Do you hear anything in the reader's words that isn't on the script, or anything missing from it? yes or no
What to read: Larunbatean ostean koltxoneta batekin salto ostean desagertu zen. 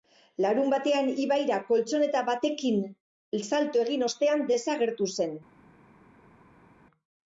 yes